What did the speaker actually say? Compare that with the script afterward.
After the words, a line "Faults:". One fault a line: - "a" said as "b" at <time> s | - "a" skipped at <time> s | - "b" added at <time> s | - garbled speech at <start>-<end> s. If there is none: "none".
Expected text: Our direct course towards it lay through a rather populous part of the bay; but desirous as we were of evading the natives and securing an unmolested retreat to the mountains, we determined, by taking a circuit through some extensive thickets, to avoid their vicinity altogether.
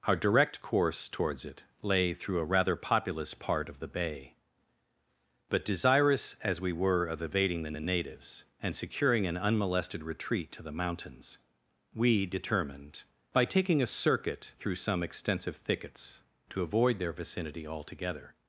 Our direct course towards it lay through a rather populous part of the bay; but desirous as we were of evading the the natives and securing an unmolested retreat to the mountains, we determined, by taking a circuit through some extensive thickets, to avoid their vicinity altogether.
Faults:
- "the" added at 7.7 s